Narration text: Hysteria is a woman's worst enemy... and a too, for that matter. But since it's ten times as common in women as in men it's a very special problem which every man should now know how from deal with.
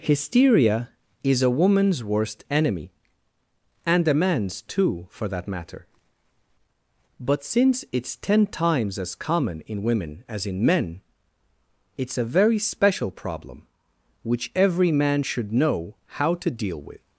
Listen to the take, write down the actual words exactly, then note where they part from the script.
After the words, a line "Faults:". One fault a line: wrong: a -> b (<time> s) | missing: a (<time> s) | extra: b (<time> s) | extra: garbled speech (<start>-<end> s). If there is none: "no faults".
Hysteria is a woman's worst enemy... and a man's too, for that matter. But since it's ten times as common in women as in men it's a very special problem which every man should know how to deal with.
Faults:
extra: man's (4.2 s)
missing: now (15.5 s)
wrong: from -> to (16.3 s)